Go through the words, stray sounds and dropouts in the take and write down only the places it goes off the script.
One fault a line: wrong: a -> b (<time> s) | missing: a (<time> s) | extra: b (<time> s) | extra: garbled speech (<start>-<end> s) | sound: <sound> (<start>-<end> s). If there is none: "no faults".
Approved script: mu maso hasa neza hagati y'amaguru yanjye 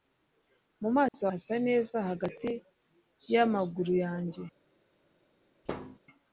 sound: dropout (1.1-1.1 s)
sound: thud (5.7-6.0 s)